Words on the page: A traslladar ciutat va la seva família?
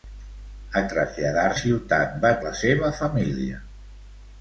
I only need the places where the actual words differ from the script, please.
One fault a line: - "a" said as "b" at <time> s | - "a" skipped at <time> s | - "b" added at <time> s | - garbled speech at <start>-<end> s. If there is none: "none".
none